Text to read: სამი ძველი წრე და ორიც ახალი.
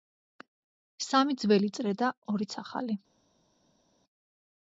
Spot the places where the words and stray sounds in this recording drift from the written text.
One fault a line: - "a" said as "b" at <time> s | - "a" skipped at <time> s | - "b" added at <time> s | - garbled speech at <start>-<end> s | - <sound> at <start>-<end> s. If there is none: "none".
none